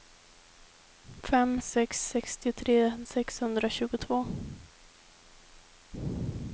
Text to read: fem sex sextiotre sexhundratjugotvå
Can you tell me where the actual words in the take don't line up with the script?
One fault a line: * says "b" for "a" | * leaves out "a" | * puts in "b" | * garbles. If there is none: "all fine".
all fine